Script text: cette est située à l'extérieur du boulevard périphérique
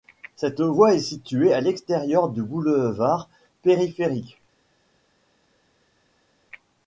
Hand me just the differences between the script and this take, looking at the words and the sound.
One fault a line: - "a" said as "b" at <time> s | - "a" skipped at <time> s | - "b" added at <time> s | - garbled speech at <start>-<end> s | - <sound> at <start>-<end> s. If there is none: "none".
- "voie" added at 0.6 s